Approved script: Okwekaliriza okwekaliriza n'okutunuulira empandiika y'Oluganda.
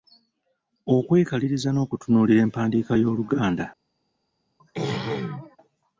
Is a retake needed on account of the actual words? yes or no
yes